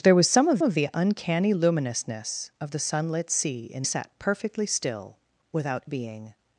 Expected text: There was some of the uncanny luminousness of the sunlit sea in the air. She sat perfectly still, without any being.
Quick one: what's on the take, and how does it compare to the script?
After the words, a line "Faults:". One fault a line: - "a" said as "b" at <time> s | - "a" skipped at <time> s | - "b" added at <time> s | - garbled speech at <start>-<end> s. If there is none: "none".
There was some of of the uncanny luminousness of the sunlit sea in sat perfectly still, without being.
Faults:
- "of" added at 0.6 s
- "the air She" skipped at 3.8 s
- "any" skipped at 5.8 s